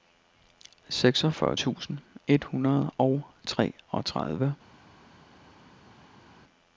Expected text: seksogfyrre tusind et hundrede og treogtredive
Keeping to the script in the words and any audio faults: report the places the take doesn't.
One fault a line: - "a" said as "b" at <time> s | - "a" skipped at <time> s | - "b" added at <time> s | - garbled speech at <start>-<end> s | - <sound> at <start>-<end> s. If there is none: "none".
none